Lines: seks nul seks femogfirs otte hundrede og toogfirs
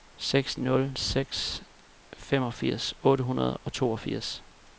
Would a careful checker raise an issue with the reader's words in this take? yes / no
no